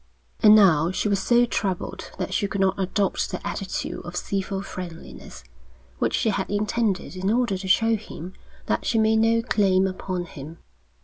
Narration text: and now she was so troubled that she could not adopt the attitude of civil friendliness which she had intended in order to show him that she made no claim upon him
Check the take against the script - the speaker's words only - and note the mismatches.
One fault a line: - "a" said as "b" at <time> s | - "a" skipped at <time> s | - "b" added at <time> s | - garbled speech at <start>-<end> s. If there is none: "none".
none